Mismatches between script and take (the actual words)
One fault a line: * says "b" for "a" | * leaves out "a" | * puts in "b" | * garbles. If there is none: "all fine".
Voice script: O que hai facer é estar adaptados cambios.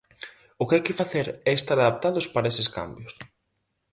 * puts in "que"
* puts in "para eses"